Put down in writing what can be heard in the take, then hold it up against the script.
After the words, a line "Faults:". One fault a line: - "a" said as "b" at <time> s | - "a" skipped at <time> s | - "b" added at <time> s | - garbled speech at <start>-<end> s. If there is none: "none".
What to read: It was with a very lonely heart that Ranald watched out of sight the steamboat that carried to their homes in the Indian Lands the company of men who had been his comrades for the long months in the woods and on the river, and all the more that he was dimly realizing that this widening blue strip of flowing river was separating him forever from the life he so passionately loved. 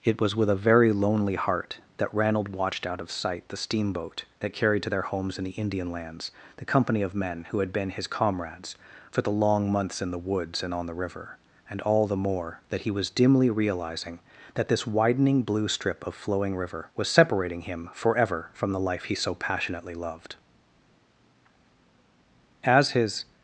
It was with a very lonely heart that Ranald watched out of sight the steamboat that carried to their homes in the Indian Lands the company of men who had been his comrades for the long months in the woods and on the river, and all the more that he was dimly realizing that this widening blue strip of flowing river was separating him forever from the life he so passionately loved. As his
Faults:
- "As his" added at 22.6 s